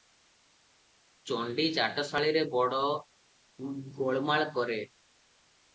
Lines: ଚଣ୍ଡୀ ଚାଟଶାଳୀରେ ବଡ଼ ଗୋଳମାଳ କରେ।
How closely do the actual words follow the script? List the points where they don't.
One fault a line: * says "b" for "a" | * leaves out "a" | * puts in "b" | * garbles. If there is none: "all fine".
all fine